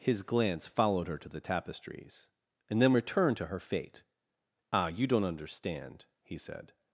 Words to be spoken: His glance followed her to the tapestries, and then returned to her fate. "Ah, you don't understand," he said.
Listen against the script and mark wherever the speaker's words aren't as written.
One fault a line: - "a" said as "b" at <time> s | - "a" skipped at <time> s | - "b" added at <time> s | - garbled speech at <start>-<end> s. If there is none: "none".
none